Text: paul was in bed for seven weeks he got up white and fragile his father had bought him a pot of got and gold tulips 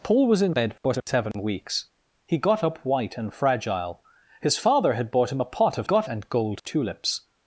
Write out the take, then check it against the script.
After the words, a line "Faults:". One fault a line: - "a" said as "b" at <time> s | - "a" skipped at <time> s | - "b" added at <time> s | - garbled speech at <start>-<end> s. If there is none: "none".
paul was in bed for seven weeks he got up white and fragile his father had bought him a pot of got and gold tulips
Faults:
none